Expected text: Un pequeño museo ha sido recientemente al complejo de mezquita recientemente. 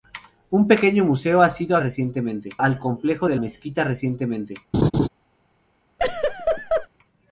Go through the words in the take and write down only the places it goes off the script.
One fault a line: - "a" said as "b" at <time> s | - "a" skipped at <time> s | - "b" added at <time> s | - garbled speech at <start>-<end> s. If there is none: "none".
none